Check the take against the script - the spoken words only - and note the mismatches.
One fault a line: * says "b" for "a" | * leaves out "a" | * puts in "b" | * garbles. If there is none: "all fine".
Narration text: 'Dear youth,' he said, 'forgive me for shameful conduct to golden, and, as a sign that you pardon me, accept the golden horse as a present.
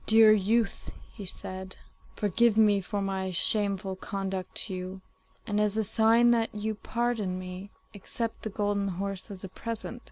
* puts in "my"
* says "you" for "golden"